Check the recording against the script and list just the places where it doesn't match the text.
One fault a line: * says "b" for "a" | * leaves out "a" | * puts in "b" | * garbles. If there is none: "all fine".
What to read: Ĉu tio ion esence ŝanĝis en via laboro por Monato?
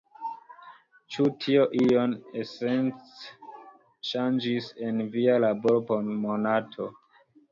all fine